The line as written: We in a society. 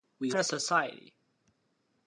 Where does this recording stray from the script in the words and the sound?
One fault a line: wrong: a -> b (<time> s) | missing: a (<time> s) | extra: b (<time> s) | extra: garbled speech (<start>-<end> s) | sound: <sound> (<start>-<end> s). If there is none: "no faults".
no faults